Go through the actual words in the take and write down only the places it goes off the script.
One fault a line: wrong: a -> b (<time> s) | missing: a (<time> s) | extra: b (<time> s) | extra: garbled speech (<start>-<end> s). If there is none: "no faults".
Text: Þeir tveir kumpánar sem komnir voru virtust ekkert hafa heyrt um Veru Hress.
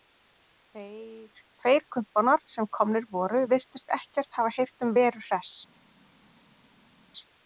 no faults